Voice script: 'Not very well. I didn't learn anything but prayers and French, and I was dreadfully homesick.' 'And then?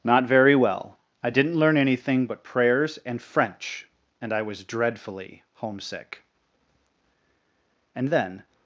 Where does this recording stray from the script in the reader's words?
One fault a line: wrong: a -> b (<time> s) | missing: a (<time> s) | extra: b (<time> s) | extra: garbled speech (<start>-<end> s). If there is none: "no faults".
no faults